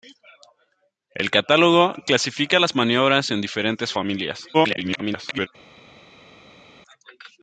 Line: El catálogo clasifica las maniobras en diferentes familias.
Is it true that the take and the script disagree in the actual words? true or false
true